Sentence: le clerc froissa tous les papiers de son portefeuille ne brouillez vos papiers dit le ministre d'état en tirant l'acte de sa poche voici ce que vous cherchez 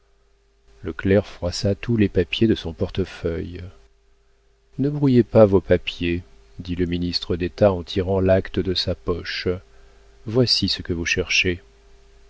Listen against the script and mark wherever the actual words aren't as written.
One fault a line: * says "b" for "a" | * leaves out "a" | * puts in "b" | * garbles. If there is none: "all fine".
* puts in "pas"